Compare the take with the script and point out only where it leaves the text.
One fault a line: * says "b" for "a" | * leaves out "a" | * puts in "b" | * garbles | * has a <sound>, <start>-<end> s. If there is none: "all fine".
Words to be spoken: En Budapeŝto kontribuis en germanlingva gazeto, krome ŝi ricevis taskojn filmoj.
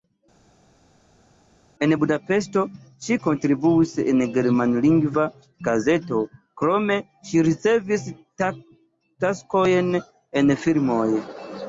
* puts in "ŝi"
* puts in "en"